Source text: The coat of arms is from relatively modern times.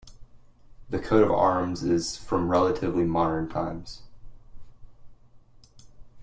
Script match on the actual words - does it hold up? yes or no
yes